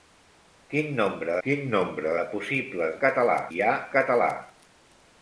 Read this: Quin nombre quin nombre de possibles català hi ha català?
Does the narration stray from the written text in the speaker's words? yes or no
no